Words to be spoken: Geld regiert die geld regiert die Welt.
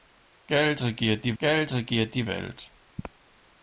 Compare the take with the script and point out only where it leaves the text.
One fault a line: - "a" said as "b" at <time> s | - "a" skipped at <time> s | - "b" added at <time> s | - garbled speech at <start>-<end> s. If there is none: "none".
none